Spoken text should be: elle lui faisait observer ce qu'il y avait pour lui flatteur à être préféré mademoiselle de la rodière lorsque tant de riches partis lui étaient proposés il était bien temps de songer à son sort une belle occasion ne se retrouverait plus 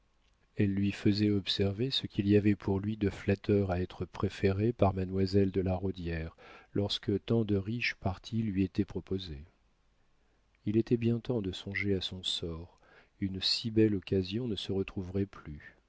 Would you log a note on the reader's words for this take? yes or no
yes